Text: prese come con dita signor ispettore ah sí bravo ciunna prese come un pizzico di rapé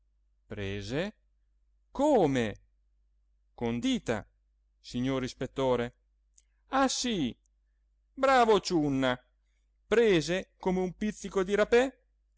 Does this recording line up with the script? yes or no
yes